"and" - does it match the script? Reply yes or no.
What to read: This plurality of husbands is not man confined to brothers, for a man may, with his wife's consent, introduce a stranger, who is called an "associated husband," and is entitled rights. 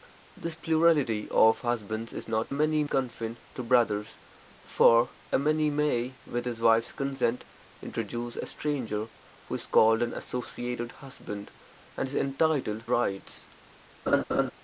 yes